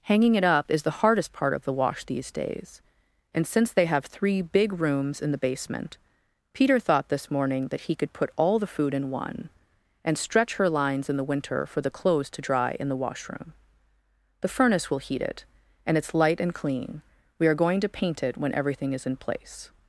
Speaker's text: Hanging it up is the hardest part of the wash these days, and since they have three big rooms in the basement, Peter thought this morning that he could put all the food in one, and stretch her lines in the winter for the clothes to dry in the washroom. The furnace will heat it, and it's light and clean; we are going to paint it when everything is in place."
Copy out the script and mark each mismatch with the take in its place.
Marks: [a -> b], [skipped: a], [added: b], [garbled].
Hanging it up is the hardest part of the wash these days, and since they have three big rooms in the basement, Peter thought this morning that he could put all the food in one, and stretch her lines in the winter for the clothes to dry in the washroom. The furnace will heat it, and it's light and clean; we are going to paint it when everything is in place."